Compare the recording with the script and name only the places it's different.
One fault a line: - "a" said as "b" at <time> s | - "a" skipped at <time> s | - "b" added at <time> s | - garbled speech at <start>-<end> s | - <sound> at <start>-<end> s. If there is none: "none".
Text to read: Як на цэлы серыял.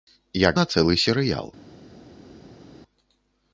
none